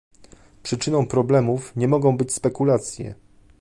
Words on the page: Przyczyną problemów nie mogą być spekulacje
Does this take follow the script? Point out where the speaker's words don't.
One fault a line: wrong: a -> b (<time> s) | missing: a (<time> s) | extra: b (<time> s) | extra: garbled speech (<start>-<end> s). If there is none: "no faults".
no faults